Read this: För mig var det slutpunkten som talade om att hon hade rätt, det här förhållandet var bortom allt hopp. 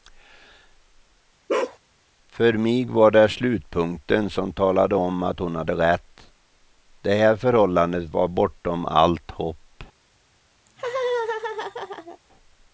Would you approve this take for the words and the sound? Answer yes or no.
no